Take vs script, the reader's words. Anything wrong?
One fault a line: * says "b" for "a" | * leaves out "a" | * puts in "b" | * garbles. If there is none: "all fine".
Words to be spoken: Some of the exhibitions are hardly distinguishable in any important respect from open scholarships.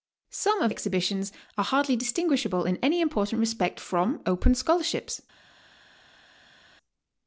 * leaves out "the"